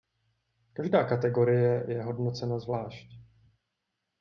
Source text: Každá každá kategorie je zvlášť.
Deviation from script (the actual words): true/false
true